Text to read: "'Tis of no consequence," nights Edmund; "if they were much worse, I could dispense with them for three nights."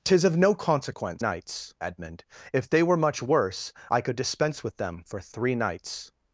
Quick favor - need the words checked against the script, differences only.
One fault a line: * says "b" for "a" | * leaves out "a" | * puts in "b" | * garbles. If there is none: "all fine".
all fine